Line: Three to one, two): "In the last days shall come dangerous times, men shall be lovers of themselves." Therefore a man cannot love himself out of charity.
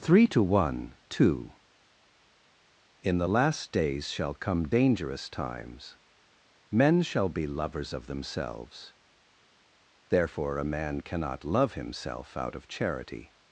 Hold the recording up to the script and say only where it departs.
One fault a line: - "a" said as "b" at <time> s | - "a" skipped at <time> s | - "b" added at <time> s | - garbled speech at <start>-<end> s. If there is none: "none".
none